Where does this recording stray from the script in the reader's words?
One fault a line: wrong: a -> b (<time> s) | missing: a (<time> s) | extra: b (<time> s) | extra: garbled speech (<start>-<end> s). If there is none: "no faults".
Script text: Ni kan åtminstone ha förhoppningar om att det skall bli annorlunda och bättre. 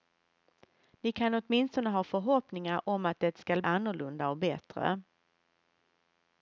missing: bli (3.6 s)